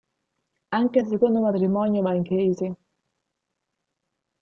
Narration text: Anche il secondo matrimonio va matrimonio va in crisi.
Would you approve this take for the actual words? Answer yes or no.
no